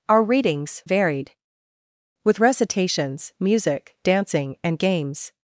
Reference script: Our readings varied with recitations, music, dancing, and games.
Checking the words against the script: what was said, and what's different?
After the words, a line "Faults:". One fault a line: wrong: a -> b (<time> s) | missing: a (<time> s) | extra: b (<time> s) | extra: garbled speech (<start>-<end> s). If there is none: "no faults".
Our readings varied with recitations, music, dancing, and games.
Faults:
no faults